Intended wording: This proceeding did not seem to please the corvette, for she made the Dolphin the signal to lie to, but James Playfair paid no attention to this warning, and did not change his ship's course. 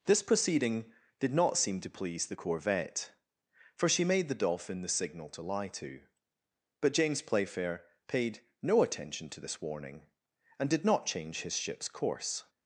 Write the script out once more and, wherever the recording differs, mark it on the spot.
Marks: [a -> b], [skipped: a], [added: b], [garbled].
This proceeding did not seem to please the corvette, for she made the Dolphin the signal to lie to, but James Playfair paid no attention to this warning, and did not change his ship's course.